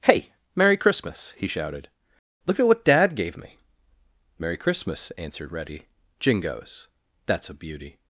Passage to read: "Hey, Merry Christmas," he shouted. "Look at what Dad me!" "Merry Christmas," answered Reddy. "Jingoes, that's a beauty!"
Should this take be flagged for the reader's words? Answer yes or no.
yes